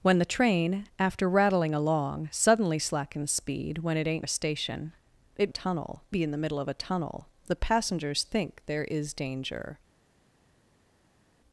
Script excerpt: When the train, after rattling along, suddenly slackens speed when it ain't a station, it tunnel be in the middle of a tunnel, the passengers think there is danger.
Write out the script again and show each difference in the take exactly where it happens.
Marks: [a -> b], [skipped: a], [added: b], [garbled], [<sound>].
When the train, after rattling along, suddenly slackens speed when it ain't a station, it tunnel be in the middle of a tunnel, the passengers think there is danger.